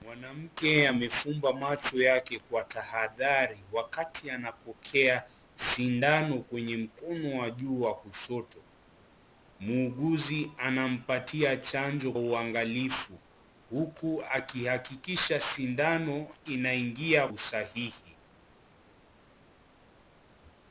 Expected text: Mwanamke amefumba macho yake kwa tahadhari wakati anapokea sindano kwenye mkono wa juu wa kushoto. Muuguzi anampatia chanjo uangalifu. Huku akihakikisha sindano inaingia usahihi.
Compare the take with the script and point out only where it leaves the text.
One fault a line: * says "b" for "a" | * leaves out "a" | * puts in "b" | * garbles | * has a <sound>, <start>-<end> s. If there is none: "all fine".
all fine